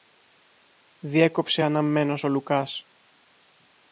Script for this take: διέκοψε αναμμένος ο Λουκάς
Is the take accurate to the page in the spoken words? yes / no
yes